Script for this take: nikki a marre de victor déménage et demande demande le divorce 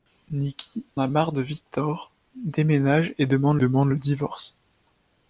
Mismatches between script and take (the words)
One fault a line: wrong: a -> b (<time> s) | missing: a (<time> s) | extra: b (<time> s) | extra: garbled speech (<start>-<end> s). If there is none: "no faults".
no faults